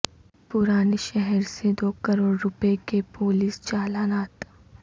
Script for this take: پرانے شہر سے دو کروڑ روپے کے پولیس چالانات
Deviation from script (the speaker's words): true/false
false